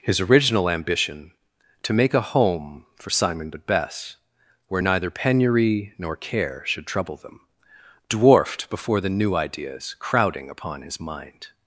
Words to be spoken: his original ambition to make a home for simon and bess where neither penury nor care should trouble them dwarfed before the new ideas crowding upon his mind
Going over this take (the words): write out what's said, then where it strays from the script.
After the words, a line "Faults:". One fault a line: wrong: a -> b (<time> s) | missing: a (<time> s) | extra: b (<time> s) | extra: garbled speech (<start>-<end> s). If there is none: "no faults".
his original ambition to make a home for simon but bess where neither penury nor care should trouble them dwarfed before the new ideas crowding upon his mind
Faults:
wrong: and -> but (3.5 s)